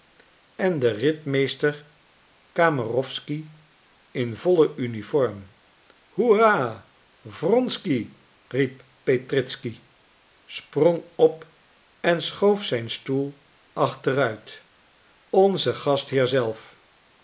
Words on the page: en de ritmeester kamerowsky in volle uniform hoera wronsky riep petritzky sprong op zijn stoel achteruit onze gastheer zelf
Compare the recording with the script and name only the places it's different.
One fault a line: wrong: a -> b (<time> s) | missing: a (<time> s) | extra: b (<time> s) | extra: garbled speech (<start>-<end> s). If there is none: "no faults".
extra: en schoof (12.0 s)